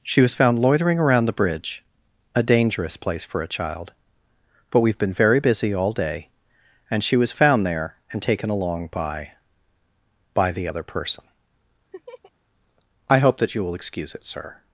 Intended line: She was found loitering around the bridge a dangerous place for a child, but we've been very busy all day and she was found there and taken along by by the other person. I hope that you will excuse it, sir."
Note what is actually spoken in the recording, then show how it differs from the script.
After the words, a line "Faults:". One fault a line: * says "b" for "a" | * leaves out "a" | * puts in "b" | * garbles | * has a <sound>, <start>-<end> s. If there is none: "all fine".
She was found loitering around the bridge a dangerous place for a child, but we've been very busy all day and she was found there and taken along by by the other person. I hope that you will excuse it, sir."
Faults:
* has a laugh, 11.9-12.3 s